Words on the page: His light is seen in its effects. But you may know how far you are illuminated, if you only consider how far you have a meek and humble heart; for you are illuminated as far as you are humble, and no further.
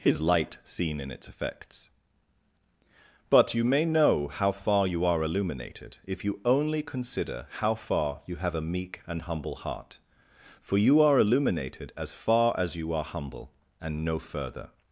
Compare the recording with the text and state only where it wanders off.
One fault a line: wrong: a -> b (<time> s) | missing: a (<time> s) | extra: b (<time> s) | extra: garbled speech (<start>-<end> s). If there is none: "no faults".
missing: is (0.6 s)